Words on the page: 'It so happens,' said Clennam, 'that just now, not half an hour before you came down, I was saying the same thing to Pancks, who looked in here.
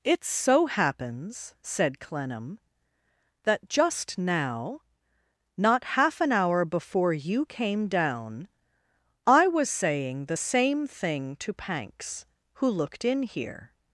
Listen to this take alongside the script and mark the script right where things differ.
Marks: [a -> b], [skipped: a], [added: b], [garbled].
'It so happens,' said Clennam, 'that just now, not half an hour before you came down, I was saying the same thing to Pancks, who looked in here.